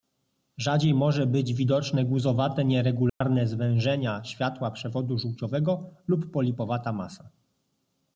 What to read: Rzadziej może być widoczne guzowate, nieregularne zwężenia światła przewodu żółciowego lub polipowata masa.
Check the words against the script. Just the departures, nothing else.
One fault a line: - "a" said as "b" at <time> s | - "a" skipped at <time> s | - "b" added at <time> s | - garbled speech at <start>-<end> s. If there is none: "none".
none